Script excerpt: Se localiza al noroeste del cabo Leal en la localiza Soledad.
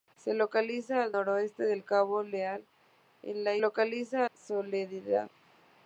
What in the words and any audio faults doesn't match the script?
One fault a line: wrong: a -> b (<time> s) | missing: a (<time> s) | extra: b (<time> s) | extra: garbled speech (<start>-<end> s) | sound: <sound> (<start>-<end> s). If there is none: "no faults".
no faults